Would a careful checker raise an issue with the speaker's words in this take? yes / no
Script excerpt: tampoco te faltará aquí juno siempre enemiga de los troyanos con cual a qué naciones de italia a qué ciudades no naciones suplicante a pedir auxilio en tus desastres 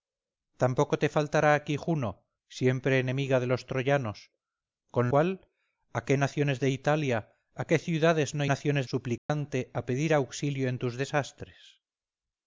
no